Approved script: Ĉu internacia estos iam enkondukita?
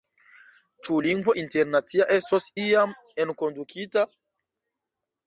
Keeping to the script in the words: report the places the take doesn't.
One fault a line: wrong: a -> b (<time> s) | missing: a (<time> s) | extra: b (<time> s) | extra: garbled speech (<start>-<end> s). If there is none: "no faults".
extra: lingvo (1.1 s)